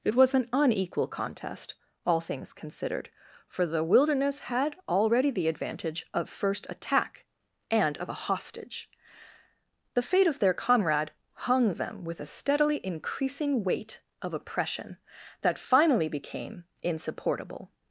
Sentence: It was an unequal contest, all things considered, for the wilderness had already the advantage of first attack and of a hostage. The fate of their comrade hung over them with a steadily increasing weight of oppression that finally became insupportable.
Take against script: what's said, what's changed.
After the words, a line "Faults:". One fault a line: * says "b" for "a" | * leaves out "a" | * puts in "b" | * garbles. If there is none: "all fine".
It was an unequal contest, all things considered, for the wilderness had already the advantage of first attack and of a hostage. The fate of their comrade hung them with a steadily increasing weight of oppression that finally became insupportable.
Faults:
* leaves out "over"